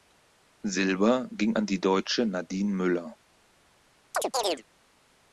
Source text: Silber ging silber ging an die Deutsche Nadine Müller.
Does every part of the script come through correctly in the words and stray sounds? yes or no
no